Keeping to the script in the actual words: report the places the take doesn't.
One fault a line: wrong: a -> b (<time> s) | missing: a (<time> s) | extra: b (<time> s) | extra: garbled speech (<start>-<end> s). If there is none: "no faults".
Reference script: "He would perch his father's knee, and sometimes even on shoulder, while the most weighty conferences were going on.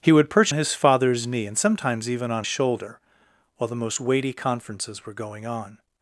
no faults